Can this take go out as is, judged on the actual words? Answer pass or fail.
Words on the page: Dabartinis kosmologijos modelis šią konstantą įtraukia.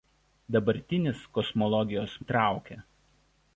fail